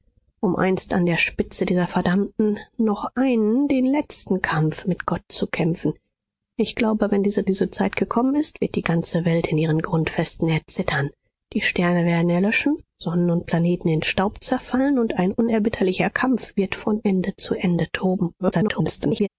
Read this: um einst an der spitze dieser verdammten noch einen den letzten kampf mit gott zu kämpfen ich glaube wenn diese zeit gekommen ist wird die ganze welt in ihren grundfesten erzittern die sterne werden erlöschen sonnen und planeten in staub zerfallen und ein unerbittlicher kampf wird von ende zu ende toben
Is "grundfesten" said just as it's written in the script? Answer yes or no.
yes